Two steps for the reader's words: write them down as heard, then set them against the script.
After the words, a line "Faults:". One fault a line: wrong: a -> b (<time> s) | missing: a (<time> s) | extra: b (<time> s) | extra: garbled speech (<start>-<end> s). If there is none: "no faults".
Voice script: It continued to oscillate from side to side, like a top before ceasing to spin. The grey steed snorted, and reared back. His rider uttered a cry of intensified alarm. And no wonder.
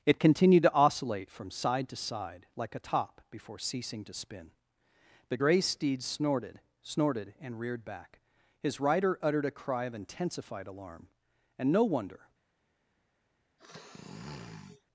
It continued to oscillate from side to side, like a top before ceasing to spin. The grey steed snorted snorted, and reared back. His rider uttered a cry of intensified alarm. And no wonder.
Faults:
extra: snorted (6.8 s)